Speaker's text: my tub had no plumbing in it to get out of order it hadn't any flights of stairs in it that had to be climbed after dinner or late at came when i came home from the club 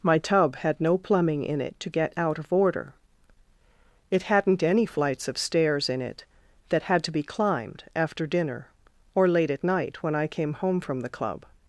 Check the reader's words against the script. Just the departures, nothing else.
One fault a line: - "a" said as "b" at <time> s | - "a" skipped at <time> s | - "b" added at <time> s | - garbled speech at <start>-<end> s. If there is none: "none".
- "came" said as "night" at 9.6 s